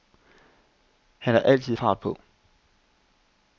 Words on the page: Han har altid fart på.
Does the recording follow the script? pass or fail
pass